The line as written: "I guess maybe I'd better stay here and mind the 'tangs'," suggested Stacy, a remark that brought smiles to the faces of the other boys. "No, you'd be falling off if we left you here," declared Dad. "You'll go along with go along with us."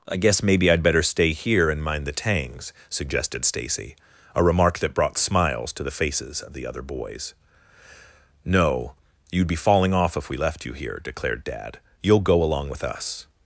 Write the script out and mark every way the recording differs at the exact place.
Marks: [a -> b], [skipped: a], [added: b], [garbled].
"I guess maybe I'd better stay here and mind the 'tangs'," suggested Stacy, a remark that brought smiles to the faces of the other boys. "No, you'd be falling off if we left you here," declared Dad. "You'll go along with [skipped: go along with] us."